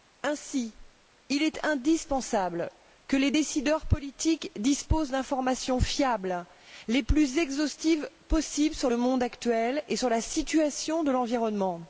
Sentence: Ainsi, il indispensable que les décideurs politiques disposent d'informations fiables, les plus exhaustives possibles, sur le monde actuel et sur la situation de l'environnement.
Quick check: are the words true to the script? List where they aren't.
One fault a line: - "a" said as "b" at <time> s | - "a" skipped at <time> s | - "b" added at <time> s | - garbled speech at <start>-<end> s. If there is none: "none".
- "est" added at 1.4 s